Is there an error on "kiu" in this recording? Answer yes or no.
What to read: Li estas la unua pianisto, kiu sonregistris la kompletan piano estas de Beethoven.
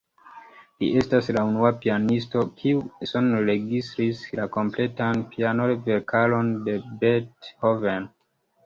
no